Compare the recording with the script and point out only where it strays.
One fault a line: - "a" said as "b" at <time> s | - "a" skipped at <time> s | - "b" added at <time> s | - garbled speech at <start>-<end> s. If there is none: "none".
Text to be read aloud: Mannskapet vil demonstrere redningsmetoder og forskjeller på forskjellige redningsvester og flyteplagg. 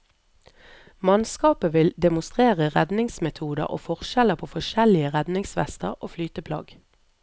none